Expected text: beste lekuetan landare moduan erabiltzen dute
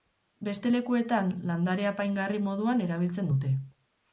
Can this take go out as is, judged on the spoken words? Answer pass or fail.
fail